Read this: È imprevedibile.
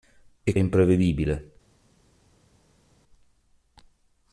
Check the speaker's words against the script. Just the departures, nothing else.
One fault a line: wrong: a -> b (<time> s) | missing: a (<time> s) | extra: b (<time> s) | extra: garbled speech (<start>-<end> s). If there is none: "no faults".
no faults